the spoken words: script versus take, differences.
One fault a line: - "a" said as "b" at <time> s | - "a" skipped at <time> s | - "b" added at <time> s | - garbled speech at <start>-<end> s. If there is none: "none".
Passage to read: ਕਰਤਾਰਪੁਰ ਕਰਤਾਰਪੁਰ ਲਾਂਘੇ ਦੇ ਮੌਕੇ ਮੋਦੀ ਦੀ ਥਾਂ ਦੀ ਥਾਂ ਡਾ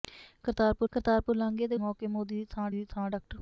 none